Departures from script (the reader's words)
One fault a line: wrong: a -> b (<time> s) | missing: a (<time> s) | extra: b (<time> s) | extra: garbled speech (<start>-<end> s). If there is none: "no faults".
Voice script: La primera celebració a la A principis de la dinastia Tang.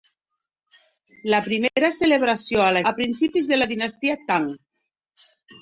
no faults